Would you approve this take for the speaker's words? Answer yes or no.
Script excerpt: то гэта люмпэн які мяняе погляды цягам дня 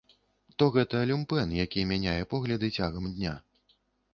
yes